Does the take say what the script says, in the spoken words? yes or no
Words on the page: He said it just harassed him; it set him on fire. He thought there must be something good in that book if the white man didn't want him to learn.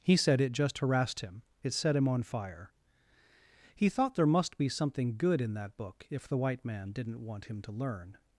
yes